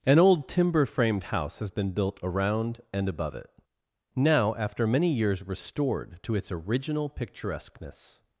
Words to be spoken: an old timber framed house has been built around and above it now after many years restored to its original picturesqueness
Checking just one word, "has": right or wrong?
right